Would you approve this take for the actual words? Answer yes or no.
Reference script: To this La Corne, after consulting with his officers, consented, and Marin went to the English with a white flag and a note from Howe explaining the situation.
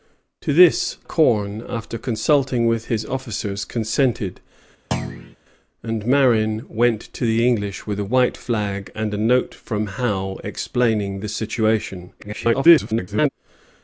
no